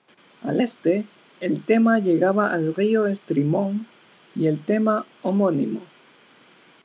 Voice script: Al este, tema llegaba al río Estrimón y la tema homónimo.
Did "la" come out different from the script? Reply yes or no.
yes